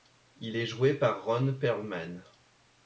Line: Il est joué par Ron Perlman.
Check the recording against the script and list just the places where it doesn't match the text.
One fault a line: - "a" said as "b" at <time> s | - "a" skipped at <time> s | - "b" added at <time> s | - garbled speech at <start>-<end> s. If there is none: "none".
none